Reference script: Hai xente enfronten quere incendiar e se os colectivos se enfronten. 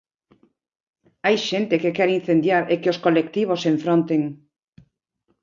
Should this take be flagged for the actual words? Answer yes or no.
yes